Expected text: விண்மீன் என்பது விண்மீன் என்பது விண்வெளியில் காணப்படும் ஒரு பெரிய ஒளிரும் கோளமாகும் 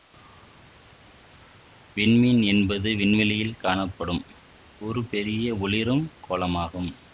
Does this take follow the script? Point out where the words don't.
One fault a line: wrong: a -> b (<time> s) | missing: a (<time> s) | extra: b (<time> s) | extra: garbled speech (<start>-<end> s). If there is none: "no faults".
missing: விண்மீன் என்பது (2.9 s)